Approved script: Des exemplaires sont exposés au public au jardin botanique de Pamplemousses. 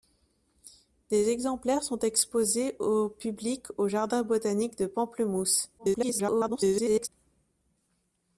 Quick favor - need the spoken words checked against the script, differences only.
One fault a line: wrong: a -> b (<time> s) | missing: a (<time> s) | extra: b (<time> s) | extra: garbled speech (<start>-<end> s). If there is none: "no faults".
extra: garbled speech (5.8-7.1 s)